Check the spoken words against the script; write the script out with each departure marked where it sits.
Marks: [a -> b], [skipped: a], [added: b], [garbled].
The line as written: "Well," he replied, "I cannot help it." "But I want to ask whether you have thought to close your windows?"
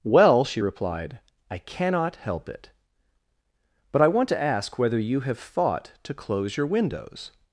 "Well," [he -> she] replied, "I cannot help it." "But I want to ask whether you have thought to close your windows?"